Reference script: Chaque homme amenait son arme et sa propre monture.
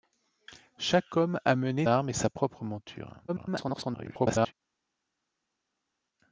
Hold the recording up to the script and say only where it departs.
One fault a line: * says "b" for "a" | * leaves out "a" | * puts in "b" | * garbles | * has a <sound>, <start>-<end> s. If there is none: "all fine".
* leaves out "son"
* garbles